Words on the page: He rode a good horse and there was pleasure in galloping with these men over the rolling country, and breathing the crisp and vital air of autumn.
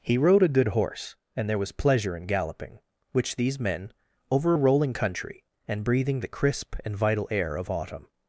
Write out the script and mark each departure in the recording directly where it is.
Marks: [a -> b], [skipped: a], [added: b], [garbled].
He rode a good horse and there was pleasure in galloping [with -> which] these men over [the -> a] rolling country, and breathing the crisp and vital air of autumn.